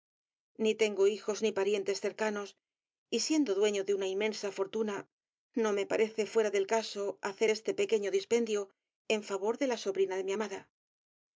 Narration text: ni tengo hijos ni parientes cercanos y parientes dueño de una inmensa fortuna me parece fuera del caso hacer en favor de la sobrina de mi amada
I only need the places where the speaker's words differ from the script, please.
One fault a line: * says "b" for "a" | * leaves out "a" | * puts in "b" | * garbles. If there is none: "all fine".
* says "siendo" for "parientes"
* puts in "no"
* puts in "este pequeño dispendio"